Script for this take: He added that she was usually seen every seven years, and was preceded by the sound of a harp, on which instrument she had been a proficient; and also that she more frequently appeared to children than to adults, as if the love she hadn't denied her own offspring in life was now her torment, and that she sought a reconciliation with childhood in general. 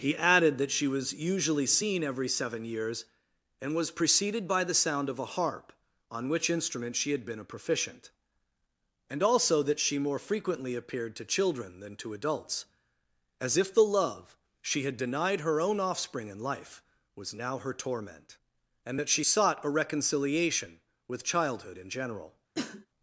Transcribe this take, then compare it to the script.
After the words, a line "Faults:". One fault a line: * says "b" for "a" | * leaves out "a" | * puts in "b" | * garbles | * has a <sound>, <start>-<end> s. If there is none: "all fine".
He added that she was usually seen every seven years, and was preceded by the sound of a harp, on which instrument she had been a proficient; and also that she more frequently appeared to children than to adults, as if the love she had denied her own offspring in life was now her torment, and that she sought a reconciliation with childhood in general.
Faults:
* says "had" for "hadn't"
* has a cough, 22.5-22.9 s